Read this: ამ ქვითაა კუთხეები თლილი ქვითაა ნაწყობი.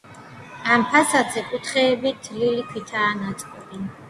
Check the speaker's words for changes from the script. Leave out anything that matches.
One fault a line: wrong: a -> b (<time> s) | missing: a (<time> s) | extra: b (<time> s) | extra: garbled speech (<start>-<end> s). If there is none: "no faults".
wrong: ქვითაა -> ფასადზე (0.9 s)